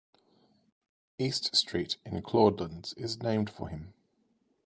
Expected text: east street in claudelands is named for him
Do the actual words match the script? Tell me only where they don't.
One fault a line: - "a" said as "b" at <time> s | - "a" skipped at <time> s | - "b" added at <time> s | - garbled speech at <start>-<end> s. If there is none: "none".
none